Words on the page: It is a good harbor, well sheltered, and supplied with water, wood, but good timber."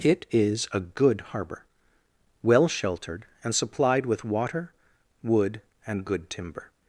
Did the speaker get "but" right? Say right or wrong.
wrong